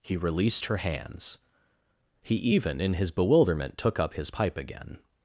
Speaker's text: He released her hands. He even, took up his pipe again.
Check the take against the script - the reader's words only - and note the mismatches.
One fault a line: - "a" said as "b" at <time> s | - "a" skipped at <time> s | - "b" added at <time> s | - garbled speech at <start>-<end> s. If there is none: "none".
- "in his bewilderment" added at 2.8 s